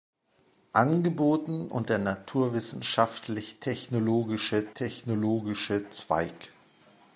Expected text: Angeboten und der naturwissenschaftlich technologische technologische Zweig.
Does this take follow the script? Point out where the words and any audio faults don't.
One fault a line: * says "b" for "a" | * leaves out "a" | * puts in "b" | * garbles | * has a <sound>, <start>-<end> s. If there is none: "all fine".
all fine